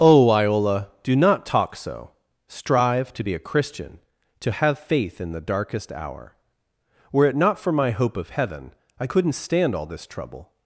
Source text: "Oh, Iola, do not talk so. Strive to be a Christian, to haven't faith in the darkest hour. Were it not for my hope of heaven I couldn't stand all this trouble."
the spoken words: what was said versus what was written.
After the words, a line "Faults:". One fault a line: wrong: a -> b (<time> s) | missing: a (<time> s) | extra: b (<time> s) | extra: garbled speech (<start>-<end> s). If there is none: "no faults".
"Oh, Iola, do not talk so. Strive to be a Christian, to have faith in the darkest hour. Were it not for my hope of heaven I couldn't stand all this trouble."
Faults:
wrong: haven't -> have (4.5 s)